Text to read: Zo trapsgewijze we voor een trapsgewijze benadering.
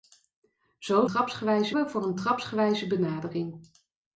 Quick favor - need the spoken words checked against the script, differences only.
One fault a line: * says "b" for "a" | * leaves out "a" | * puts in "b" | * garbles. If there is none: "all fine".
all fine